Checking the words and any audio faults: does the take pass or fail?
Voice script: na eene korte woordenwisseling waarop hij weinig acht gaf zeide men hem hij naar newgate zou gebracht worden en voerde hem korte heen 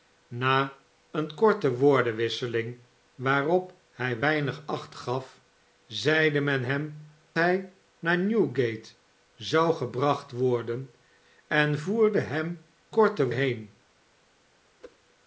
fail